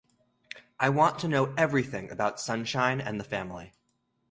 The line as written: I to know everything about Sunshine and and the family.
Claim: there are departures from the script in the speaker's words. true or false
true